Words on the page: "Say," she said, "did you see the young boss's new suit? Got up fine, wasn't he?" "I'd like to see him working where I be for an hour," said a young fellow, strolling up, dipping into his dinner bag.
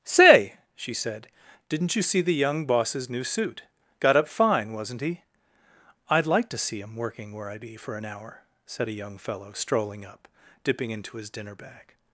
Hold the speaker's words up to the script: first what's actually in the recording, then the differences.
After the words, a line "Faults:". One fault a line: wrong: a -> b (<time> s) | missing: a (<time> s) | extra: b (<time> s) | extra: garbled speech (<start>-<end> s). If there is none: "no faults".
"Say," she said, "didn't you see the young boss's new suit? Got up fine, wasn't he?" "I'd like to see him working where I be for an hour," said a young fellow, strolling up, dipping into his dinner bag.
Faults:
wrong: did -> didn't (1.7 s)